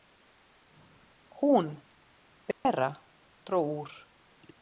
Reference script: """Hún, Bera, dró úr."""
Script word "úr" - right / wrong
right